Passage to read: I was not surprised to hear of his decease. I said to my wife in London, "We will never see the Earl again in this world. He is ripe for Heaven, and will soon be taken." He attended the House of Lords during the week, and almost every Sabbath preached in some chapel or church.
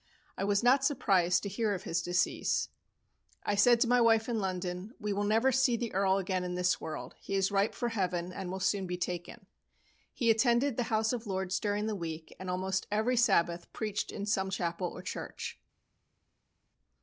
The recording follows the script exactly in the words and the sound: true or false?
true